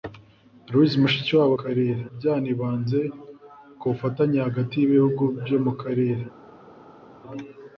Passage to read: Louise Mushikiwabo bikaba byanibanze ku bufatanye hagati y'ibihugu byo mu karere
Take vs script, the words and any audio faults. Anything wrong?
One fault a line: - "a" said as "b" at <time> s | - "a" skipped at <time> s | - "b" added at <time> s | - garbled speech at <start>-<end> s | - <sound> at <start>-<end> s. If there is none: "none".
- "bikaba" said as "karere" at 1.6 s